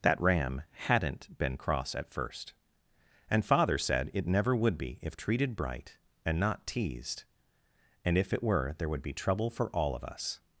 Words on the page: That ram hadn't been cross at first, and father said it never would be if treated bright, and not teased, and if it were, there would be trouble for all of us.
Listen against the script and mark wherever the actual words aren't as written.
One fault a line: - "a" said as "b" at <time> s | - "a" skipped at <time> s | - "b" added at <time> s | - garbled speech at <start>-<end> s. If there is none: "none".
none